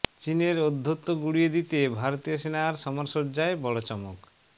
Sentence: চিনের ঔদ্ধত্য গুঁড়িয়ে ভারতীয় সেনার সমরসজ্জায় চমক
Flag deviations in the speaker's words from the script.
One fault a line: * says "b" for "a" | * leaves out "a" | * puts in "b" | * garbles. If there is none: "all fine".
* puts in "দিতে"
* puts in "বড়"